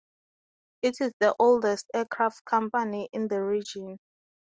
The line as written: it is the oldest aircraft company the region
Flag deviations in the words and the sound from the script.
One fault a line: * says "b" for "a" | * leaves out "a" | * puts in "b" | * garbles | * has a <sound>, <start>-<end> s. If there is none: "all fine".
* puts in "in"